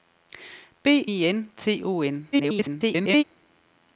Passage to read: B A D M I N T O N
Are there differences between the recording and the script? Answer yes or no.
yes